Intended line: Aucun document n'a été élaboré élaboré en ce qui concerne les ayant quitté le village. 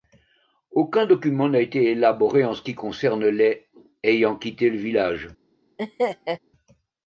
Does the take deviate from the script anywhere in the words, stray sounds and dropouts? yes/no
yes